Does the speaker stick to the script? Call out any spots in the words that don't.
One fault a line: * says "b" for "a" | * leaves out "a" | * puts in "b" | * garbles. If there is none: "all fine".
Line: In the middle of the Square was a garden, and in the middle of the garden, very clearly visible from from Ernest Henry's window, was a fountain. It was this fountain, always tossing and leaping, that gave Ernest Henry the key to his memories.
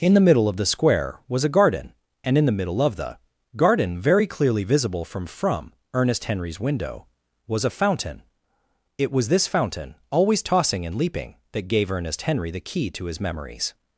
all fine